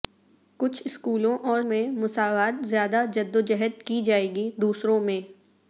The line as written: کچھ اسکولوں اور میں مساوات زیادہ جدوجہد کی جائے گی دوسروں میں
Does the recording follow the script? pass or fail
pass